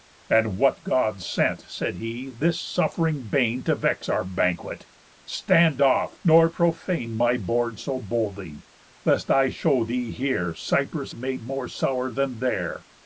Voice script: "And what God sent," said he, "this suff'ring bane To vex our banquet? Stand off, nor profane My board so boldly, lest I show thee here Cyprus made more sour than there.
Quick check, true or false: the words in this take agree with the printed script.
true